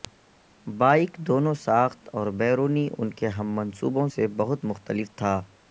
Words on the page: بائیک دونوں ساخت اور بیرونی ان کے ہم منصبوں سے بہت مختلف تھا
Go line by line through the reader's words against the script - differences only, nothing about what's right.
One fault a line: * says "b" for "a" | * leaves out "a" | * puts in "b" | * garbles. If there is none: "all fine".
all fine